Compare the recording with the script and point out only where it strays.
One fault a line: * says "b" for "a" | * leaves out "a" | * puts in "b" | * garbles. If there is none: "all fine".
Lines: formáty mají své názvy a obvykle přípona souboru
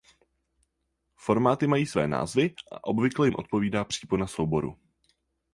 * puts in "jim odpovídá"